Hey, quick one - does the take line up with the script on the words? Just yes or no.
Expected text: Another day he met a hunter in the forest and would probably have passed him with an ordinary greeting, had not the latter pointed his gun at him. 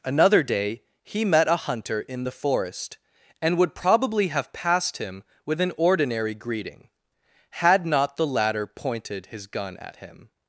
yes